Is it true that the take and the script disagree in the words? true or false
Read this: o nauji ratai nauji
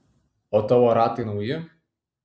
true